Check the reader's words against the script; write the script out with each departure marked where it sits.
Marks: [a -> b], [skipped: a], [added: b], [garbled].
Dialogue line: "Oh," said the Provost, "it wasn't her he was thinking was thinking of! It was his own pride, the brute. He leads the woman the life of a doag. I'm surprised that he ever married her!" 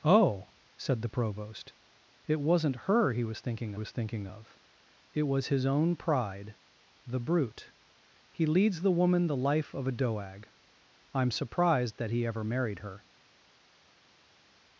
"Oh," said the Provost, "it wasn't her he was thinking was thinking of! It was his own pride, the brute. He leads the woman the life of a doag. I'm surprised that he ever married her!"